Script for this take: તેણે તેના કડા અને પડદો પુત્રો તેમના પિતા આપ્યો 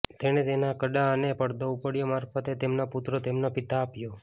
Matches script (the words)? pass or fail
fail